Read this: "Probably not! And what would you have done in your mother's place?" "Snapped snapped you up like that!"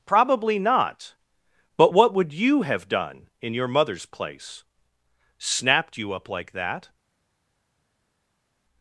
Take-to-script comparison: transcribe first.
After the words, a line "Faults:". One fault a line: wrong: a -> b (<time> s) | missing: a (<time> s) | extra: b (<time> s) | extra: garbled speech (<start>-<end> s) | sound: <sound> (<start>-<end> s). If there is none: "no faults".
"Probably not! But what would you have done in your mother's place?" "Snapped you up like that!"
Faults:
wrong: And -> But (1.8 s)
missing: snapped (6.0 s)